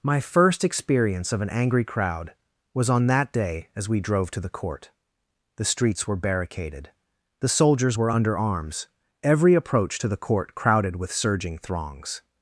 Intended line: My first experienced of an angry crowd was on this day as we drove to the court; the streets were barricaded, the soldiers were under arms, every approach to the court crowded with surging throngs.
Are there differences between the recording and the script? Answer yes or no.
yes